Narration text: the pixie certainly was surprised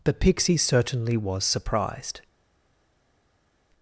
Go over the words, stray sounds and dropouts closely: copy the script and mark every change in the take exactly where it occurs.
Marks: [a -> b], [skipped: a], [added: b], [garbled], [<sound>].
the pixie certainly was surprised